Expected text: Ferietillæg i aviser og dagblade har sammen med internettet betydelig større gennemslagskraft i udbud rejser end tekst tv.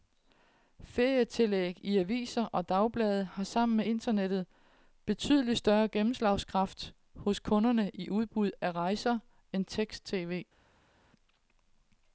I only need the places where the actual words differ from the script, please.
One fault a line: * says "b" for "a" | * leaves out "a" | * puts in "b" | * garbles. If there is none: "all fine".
* puts in "hos kunderne"
* puts in "af"